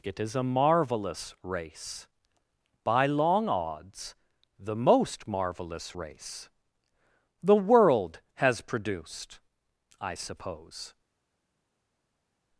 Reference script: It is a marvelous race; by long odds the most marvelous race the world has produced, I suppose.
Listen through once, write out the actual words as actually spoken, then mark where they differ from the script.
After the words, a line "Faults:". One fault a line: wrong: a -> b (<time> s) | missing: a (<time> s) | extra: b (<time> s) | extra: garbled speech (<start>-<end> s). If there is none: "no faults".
It is a marvelous race; by long odds the most marvelous race the world has produced, I suppose.
Faults:
no faults